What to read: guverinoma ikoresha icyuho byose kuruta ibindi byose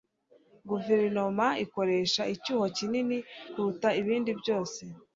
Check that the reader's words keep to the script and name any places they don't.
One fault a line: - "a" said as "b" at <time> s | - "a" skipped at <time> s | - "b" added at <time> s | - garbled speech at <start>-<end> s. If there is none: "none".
- "byose" said as "kinini" at 2.8 s